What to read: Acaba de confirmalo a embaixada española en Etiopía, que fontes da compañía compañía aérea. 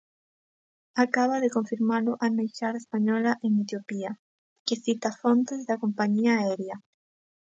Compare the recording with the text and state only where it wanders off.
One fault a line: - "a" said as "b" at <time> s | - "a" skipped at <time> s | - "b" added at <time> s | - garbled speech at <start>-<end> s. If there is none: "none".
- "cita" added at 4.8 s
- "compañía" skipped at 6.3 s